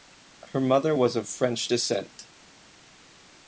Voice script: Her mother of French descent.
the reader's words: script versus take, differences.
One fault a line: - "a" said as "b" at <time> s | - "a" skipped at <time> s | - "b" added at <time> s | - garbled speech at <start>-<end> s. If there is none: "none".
- "was" added at 0.9 s